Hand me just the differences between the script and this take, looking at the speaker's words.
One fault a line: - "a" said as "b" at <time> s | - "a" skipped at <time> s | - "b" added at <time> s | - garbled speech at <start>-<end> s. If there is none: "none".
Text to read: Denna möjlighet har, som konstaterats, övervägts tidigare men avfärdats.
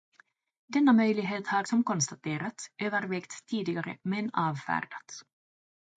none